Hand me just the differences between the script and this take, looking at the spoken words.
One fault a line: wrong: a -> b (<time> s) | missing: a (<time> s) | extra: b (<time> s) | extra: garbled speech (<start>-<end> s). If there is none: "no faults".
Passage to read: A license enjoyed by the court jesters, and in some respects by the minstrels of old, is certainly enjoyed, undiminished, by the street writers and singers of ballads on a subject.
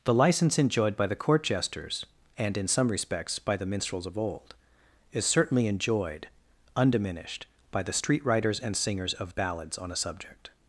wrong: A -> The (0.0 s)